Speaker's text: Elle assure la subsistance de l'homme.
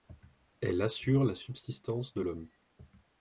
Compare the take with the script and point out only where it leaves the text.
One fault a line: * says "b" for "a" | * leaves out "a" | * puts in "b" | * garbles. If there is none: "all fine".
all fine